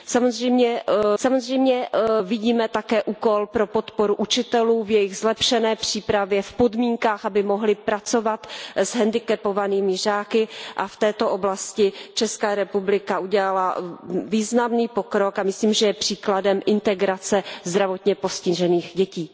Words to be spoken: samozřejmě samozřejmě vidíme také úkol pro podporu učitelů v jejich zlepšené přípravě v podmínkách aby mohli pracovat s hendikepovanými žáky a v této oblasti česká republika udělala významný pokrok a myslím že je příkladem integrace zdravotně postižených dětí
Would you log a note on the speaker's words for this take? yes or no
no